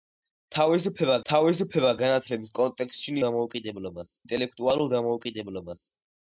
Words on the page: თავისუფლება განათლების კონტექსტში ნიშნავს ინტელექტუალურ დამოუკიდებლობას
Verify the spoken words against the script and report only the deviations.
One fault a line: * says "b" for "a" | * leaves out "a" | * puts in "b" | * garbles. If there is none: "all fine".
* puts in "თავისუფლება"
* says "დამოუკიდებლობას" for "ნიშნავს"